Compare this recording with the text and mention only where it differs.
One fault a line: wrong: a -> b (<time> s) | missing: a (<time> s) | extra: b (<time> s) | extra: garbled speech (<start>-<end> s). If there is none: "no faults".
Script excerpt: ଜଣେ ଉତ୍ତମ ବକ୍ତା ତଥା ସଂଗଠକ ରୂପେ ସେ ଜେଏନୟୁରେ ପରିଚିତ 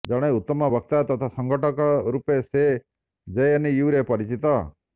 no faults